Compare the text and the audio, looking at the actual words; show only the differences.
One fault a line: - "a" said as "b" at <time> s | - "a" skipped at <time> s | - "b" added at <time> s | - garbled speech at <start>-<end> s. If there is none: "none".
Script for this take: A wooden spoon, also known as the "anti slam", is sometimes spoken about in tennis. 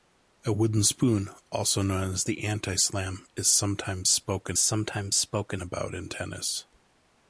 - "sometimes spoken" added at 4.6 s